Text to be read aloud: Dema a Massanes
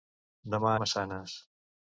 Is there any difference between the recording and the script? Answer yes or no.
no